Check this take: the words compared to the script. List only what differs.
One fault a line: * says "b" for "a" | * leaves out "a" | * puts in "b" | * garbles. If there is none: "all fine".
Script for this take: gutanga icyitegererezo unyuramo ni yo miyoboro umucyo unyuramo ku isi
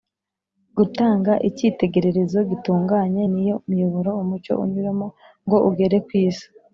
* says "gitunganye" for "unyuramo"
* puts in "ngo ugere"